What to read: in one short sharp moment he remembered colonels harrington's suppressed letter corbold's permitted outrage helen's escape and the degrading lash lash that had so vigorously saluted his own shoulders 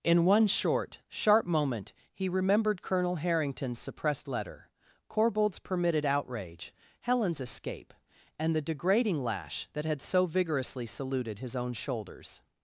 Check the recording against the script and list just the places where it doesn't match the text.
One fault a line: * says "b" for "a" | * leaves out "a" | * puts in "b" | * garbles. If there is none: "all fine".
* says "colonel" for "colonels"
* leaves out "lash"